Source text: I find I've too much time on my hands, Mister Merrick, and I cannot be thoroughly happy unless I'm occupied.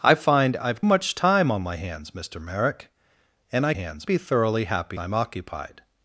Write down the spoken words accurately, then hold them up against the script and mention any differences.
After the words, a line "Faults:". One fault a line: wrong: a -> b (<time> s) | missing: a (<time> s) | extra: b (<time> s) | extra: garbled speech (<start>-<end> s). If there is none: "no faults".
I find I've much time on my hands, Mister Merrick, and I hands be thoroughly happy I'm occupied.
Faults:
missing: too (0.8 s)
wrong: cannot -> hands (3.7 s)
missing: unless (5.0 s)